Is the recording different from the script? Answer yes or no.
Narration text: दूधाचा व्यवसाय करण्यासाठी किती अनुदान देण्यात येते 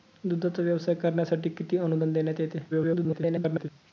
yes